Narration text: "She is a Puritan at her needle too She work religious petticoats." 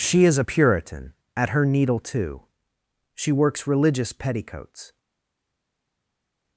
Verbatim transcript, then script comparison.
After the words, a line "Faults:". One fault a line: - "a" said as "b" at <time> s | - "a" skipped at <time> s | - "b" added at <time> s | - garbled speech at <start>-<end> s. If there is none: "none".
"She is a Puritan at her needle too She works religious petticoats."
Faults:
- "work" said as "works" at 3.3 s